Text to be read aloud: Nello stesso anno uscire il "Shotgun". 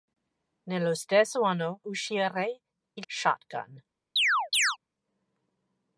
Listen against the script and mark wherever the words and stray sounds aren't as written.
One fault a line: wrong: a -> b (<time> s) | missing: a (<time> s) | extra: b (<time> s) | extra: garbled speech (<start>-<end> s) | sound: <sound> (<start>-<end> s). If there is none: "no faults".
sound: chirp (4.2-4.8 s)